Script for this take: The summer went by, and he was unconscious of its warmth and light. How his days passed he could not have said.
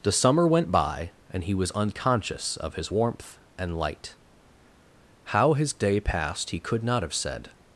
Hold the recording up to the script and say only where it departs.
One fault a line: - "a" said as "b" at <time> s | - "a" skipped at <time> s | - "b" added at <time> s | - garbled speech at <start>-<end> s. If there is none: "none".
- "its" said as "his" at 2.8 s
- "days" said as "day" at 5.7 s